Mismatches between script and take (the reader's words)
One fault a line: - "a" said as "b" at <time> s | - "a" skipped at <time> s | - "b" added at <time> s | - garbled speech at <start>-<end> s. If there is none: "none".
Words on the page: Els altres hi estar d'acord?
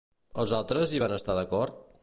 - "van" added at 1.0 s